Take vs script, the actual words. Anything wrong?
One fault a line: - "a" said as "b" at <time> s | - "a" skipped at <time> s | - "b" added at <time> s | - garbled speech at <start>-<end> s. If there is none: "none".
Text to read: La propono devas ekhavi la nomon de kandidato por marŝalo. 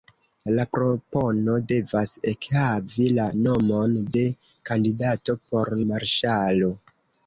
none